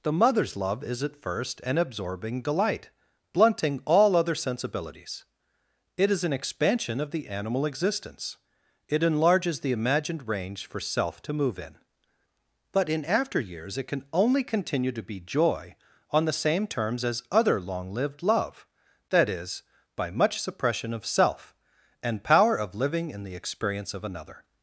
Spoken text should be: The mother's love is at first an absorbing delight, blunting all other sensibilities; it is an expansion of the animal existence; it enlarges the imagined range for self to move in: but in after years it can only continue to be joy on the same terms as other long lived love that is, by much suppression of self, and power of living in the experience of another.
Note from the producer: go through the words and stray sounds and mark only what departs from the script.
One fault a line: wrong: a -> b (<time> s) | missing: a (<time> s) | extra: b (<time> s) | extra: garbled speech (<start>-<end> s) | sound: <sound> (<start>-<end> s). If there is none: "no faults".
no faults